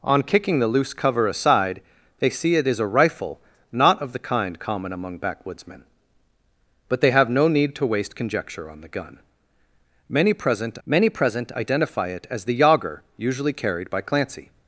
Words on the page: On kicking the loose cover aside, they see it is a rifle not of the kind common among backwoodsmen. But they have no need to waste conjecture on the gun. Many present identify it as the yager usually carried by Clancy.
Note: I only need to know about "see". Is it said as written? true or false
true